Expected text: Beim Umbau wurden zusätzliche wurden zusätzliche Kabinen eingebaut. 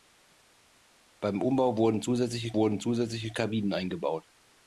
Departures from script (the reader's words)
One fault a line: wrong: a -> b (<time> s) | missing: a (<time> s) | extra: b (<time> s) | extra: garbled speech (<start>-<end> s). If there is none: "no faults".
no faults